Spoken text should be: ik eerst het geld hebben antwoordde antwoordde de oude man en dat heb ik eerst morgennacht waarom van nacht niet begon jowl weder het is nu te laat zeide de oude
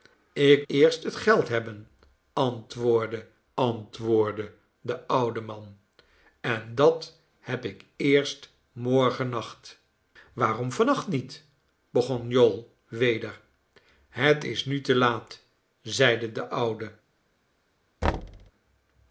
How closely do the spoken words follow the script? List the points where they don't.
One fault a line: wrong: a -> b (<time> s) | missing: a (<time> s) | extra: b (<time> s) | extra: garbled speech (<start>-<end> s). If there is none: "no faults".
no faults